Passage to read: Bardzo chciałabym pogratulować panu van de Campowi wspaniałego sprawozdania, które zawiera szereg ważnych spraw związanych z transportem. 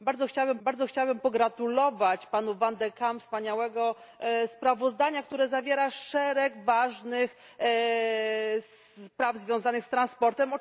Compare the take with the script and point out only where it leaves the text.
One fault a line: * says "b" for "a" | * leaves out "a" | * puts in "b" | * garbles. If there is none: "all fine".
* puts in "bardzo chciałabym"